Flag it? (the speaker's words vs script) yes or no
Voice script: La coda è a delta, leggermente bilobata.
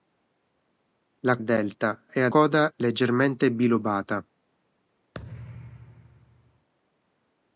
yes